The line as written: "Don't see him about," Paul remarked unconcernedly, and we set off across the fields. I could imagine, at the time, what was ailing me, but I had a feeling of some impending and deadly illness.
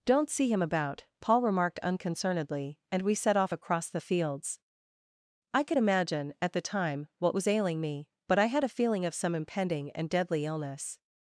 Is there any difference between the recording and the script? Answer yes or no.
no